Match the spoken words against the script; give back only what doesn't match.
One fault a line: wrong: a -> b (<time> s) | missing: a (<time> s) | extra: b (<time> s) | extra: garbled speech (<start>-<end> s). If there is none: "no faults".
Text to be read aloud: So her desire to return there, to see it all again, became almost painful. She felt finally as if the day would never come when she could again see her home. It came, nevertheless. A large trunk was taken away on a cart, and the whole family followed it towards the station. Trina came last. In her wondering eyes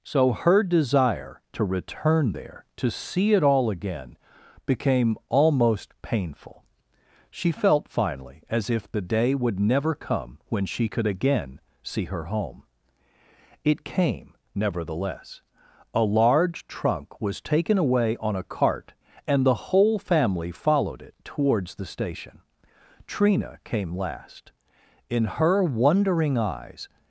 no faults